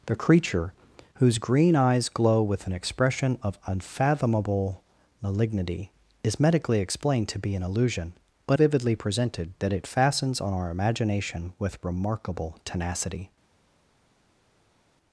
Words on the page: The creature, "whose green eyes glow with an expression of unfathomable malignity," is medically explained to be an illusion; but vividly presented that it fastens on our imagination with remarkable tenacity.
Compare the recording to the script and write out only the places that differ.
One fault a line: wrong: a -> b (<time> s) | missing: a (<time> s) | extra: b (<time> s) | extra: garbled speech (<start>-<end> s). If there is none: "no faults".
no faults